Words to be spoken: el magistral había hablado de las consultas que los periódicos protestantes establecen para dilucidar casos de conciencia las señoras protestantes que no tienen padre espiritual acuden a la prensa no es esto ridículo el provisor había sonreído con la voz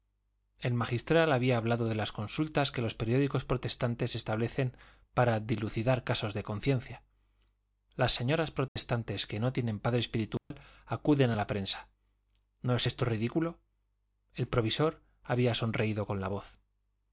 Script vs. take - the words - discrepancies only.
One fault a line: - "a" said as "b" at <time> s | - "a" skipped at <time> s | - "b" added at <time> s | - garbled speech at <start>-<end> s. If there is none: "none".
none